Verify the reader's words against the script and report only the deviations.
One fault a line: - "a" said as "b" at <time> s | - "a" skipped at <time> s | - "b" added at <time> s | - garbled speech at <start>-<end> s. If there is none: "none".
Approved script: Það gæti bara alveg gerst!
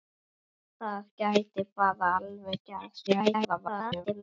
- garbled speech at 3.1-4.2 s